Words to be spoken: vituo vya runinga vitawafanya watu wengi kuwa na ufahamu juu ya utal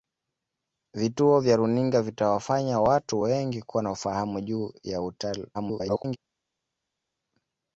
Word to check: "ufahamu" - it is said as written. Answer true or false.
true